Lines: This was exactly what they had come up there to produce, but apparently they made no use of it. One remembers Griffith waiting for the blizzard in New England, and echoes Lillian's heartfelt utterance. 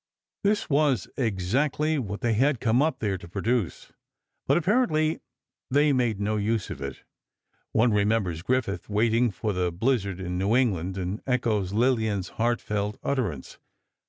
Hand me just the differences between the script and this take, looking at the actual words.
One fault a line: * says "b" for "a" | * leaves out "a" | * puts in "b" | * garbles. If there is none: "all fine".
all fine